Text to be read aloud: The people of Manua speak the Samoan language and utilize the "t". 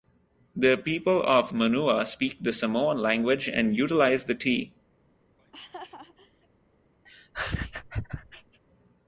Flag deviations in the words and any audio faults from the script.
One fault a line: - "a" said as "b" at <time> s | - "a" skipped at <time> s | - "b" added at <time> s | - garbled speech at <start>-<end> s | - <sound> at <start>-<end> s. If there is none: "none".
- laugh at 5.4-6.5 s
- laugh at 7.0-8.6 s